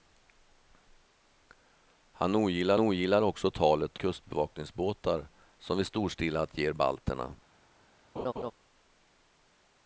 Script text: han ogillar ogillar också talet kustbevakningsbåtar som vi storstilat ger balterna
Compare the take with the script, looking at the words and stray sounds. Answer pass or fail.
fail